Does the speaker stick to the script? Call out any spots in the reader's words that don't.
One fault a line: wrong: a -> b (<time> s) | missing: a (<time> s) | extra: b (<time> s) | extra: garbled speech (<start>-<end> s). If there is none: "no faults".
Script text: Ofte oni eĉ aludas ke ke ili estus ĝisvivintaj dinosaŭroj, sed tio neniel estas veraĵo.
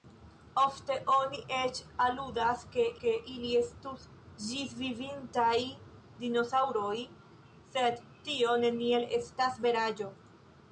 no faults